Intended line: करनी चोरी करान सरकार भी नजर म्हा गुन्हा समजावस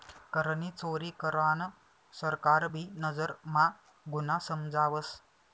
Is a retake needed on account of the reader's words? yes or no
no